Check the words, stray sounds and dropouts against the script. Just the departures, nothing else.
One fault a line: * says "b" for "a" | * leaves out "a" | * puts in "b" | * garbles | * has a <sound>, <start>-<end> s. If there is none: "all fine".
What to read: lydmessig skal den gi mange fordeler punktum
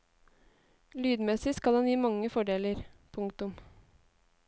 all fine